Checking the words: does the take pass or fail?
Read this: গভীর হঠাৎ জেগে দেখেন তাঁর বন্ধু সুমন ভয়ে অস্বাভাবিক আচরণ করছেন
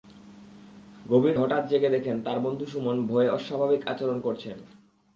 pass